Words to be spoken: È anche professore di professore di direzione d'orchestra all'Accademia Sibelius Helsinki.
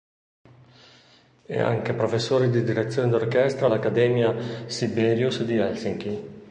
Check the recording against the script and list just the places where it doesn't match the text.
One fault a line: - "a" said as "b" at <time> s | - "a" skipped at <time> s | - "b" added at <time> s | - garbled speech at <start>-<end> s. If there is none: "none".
- "professore di" skipped at 2.6 s
- "di" added at 5.4 s